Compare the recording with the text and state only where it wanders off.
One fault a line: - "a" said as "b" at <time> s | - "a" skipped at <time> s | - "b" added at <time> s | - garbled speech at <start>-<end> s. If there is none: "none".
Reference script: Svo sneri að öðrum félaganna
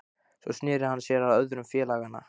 - "hann sér" added at 0.9 s